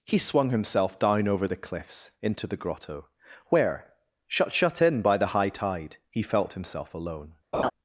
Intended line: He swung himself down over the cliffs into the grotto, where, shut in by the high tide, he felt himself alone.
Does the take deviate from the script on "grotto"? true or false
false